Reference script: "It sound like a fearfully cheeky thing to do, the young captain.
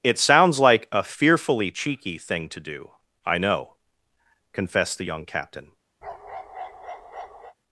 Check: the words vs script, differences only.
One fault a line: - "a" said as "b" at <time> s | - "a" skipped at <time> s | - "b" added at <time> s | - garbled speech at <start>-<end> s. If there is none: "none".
- "sound" said as "sounds" at 0.2 s
- "I know confessed" added at 3.2 s